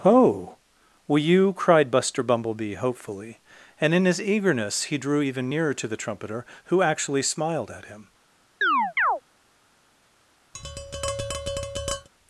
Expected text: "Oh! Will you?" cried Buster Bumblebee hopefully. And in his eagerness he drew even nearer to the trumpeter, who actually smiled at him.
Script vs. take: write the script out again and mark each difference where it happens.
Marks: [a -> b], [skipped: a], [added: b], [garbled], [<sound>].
"Oh! Will you?" cried Buster Bumblebee hopefully. And in his eagerness he drew even nearer to the trumpeter, who actually smiled at him. [chirp] [tap]